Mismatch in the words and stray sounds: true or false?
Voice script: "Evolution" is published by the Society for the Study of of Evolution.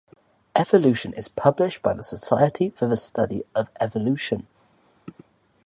true